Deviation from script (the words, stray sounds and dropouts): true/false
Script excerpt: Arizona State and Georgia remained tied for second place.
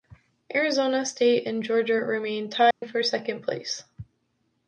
true